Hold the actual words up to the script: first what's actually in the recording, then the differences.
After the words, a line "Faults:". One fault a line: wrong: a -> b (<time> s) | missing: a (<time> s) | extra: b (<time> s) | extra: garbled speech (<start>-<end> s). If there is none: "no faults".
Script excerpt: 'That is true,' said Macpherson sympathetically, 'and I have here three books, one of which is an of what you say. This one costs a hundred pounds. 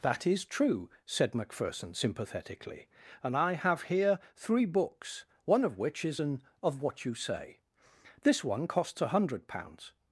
'That is true,' said Macpherson sympathetically, 'and I have here three books, one of which is an of what you say. This one costs a hundred pounds.
Faults:
no faults